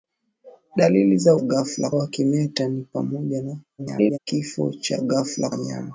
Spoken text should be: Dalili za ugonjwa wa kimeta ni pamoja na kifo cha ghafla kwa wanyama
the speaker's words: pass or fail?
fail